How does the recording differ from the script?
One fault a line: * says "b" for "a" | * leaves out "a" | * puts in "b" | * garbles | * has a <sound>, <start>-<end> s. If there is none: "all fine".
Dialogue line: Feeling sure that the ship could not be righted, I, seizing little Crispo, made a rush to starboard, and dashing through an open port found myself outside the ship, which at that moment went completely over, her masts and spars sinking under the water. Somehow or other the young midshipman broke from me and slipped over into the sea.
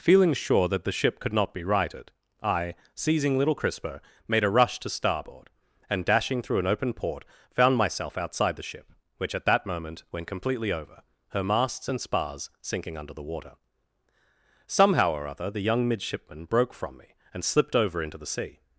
all fine